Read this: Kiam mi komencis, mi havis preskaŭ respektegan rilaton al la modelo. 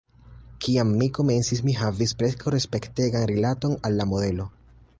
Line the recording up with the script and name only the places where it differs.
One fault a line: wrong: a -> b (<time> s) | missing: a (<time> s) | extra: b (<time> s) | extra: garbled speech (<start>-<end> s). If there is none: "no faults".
no faults